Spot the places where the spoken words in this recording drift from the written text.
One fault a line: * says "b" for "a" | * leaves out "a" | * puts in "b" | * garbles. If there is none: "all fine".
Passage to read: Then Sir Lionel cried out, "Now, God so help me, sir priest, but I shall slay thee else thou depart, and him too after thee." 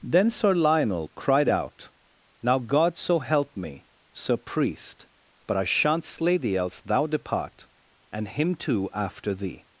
* says "shan't" for "shall"